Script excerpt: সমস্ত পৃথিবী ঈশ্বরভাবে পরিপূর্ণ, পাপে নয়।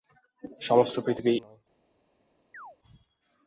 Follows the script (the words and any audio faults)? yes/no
no